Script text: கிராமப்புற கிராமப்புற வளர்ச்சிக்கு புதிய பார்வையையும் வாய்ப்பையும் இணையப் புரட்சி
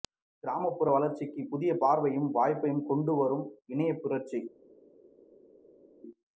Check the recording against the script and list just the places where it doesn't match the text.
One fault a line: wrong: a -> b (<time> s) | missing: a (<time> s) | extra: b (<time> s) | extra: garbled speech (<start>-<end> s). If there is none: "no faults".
missing: கிராமப்புற (0.9 s)
extra: கொண்டு வரும் (2.9 s)